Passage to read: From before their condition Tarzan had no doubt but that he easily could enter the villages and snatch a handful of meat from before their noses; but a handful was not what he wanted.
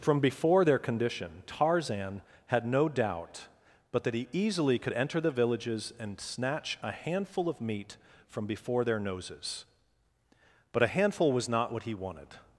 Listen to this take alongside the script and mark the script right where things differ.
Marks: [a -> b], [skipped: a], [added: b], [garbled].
From before their condition Tarzan had no doubt but that he easily could enter the villages and snatch a handful of meat from before their noses; but a handful was not what he wanted.